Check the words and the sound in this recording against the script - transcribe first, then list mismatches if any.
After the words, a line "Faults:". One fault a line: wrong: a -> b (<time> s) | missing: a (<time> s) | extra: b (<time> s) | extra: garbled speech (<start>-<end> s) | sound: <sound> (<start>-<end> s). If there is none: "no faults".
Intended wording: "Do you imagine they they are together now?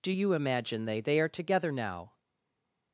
"Do you imagine they they are together now?
Faults:
no faults